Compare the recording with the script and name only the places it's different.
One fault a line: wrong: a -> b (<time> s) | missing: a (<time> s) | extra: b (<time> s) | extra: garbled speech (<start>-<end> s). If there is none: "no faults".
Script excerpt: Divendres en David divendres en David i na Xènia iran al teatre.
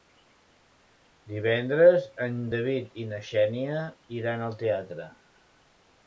missing: divendres en David (3.0 s)